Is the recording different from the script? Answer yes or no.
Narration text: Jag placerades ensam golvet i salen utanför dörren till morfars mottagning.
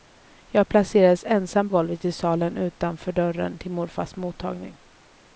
no